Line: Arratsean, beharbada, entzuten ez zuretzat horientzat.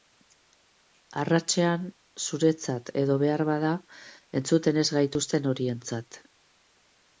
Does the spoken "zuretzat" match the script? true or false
false